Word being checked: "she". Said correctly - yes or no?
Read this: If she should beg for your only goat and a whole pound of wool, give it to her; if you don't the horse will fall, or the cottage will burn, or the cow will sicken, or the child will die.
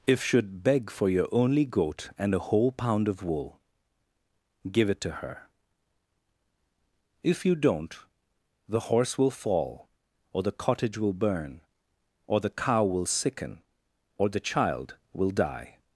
no